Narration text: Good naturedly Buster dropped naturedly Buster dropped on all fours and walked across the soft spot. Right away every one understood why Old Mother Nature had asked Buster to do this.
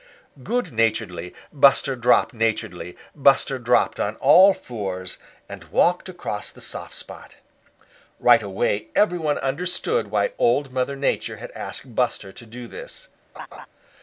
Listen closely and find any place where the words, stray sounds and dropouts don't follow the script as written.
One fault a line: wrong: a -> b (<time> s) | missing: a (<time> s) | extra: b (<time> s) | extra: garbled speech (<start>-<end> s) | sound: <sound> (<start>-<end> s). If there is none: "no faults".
sound: laugh (13.3-13.7 s)